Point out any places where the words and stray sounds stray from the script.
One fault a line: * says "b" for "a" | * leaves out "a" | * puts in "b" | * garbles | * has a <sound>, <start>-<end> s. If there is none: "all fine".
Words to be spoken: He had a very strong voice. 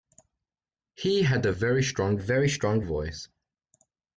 * puts in "very strong"